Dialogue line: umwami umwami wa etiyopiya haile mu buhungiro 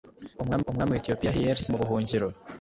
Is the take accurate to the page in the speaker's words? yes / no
yes